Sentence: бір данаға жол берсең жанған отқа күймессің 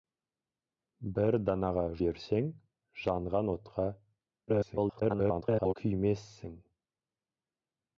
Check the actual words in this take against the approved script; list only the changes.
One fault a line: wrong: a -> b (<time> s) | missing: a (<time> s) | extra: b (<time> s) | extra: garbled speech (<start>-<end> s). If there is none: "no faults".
missing: жол (1.8 s)
extra: garbled speech (4.5-5.7 s)